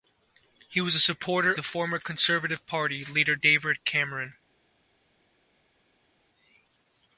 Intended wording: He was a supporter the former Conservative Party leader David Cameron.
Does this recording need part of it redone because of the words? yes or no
no